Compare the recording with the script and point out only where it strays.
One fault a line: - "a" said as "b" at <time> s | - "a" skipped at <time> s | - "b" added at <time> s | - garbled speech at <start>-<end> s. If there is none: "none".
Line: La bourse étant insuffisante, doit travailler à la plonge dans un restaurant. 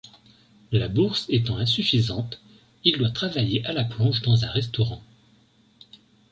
- "il" added at 2.8 s